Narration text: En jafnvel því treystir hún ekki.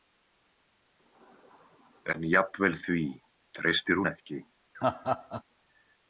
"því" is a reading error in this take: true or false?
false